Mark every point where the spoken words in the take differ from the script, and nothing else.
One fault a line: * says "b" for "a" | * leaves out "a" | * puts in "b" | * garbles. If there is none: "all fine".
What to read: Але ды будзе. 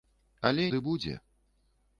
all fine